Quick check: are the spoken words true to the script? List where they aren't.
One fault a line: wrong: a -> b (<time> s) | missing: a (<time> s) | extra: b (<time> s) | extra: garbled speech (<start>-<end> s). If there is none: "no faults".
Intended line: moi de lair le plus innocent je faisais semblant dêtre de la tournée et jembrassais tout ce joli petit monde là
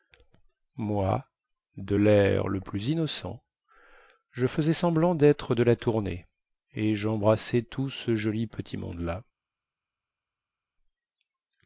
no faults